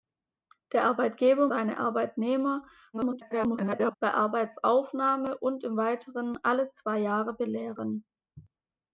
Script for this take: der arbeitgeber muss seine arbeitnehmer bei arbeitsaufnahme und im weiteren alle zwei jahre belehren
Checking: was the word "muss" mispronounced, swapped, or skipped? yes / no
yes